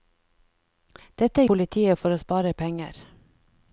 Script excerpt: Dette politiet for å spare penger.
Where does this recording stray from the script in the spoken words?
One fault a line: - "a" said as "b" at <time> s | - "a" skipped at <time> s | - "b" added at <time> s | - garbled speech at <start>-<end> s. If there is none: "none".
none